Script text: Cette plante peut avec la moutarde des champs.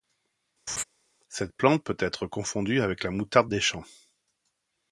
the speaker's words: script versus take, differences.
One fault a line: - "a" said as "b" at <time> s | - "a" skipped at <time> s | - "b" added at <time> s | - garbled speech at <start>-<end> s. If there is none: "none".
- "être confondue" added at 2.0 s